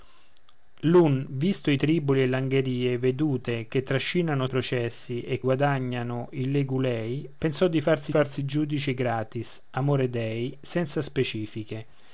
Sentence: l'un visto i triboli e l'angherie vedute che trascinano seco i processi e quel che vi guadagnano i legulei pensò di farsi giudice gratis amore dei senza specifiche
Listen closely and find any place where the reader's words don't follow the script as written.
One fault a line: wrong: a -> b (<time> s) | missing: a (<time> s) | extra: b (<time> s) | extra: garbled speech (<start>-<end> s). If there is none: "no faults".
missing: seco (4.5 s)
missing: quel che vi (5.4 s)
extra: farsi (8.1 s)